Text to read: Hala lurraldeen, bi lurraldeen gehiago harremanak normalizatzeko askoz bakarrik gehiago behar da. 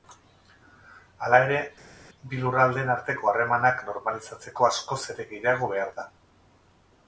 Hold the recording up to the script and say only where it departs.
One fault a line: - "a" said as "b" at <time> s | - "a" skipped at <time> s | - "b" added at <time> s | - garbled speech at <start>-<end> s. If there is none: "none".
- "lurraldeen" said as "ere" at 1.5 s
- "gehiago" said as "arteko" at 2.9 s
- "bakarrik" said as "ere" at 5.2 s